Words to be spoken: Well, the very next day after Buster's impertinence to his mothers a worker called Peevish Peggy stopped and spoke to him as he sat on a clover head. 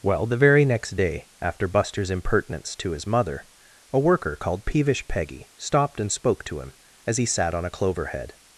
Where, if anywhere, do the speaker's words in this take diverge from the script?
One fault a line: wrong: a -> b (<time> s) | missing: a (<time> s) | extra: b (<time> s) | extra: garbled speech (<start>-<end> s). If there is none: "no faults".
wrong: mothers -> mother (3.1 s)